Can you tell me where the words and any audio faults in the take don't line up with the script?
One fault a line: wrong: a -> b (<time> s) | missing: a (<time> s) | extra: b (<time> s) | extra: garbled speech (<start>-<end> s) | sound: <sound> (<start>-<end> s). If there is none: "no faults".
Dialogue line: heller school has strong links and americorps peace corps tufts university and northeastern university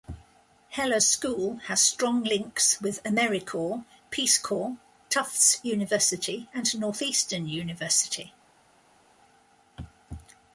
wrong: and -> with (2.8 s)